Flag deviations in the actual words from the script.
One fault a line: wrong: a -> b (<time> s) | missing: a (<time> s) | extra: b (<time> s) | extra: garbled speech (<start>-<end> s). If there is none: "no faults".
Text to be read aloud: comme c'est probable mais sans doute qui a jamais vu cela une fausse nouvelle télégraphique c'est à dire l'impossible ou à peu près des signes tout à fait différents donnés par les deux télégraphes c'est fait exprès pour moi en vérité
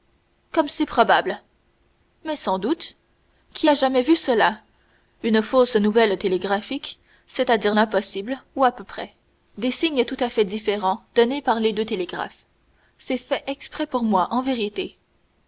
no faults